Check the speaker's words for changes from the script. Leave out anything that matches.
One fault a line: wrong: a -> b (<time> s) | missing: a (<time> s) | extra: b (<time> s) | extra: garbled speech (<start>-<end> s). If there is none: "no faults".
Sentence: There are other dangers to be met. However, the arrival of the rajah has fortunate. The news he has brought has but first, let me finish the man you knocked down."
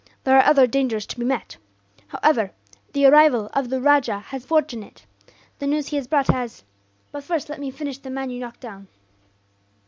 no faults